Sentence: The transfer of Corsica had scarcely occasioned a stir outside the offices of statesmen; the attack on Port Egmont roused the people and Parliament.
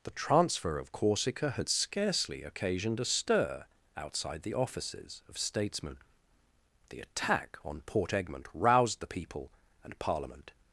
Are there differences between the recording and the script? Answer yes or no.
no